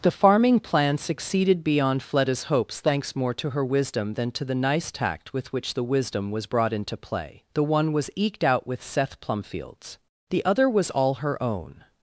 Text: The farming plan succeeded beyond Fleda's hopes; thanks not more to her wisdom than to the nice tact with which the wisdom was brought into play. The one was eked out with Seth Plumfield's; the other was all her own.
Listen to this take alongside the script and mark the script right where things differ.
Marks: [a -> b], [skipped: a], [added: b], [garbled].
The farming plan succeeded beyond Fleda's hopes; thanks [skipped: not] more to her wisdom than to the nice tact with which the wisdom was brought into play. The one was eked out with Seth Plumfield's; the other was all her own.